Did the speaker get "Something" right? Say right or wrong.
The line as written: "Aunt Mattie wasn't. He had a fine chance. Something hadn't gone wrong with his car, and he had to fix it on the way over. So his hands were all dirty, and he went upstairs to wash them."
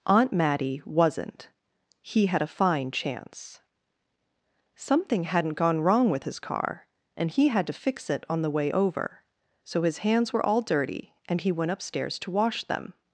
right